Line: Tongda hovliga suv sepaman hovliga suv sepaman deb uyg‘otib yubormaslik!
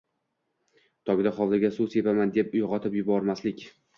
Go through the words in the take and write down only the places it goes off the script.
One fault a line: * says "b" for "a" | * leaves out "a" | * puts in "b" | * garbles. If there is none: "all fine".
* leaves out "hovliga suv sepaman"